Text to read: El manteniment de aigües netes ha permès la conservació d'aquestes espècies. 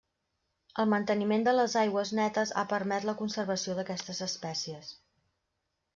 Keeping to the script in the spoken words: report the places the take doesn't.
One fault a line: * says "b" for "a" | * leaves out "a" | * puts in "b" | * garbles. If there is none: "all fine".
* puts in "les"